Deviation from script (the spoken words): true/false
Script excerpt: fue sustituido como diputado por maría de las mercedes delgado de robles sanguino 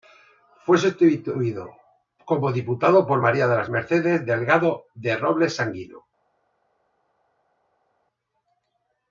false